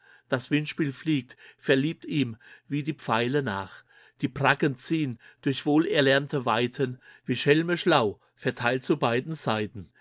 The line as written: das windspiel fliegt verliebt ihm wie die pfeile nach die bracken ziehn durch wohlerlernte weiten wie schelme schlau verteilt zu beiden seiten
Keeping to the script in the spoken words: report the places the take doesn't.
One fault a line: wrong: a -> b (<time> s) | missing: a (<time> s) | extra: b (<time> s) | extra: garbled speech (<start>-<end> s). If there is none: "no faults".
no faults